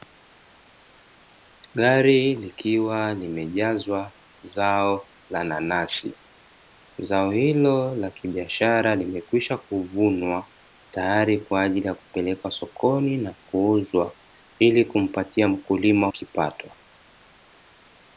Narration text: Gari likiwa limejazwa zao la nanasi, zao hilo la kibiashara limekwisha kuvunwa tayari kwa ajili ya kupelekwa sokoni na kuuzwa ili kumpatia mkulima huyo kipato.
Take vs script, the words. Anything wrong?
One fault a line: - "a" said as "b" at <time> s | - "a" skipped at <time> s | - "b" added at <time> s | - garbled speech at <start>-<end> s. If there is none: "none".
- "huyo" skipped at 16.1 s